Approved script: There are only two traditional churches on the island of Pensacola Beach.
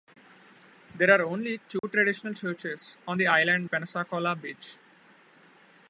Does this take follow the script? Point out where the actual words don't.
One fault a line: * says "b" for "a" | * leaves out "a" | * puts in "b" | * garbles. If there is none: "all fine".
* leaves out "of"